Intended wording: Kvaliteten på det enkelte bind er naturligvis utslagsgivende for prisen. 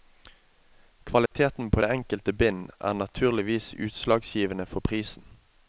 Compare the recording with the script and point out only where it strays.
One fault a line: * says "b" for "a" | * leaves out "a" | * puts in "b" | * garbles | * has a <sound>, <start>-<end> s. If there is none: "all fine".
* has a dropout, 1.3-1.3 s